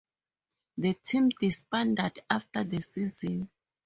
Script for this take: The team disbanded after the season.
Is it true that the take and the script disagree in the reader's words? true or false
false